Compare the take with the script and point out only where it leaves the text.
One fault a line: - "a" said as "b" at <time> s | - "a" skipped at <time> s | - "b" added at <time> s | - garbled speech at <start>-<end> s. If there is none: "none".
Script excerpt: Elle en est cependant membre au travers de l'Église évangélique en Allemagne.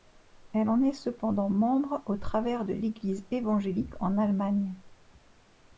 none